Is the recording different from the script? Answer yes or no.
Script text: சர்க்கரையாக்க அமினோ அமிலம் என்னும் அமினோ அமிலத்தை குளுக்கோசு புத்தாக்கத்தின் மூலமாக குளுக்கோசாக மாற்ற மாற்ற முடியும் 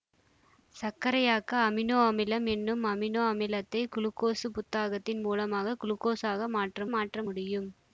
no